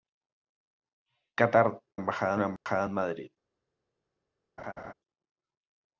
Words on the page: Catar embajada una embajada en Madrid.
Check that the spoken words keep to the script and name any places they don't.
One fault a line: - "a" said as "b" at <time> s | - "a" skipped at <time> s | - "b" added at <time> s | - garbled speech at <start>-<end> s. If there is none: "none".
none